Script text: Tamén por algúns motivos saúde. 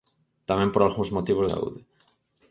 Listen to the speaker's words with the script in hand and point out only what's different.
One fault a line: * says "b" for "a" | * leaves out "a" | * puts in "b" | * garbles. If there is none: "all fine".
all fine